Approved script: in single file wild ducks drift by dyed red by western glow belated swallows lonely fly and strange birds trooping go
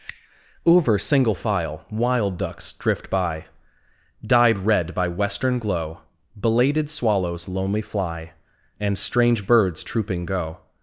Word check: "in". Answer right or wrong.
wrong